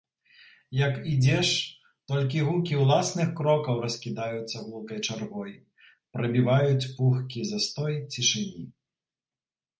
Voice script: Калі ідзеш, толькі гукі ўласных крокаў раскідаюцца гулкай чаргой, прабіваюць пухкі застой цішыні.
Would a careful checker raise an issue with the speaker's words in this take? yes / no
yes